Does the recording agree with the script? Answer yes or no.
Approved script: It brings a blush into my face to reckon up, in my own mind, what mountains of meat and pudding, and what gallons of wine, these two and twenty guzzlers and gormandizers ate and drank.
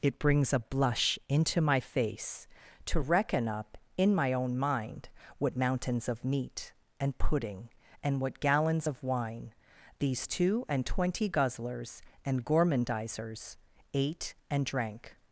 yes